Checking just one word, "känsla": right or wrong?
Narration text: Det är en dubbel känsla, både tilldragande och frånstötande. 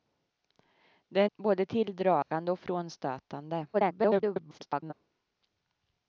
wrong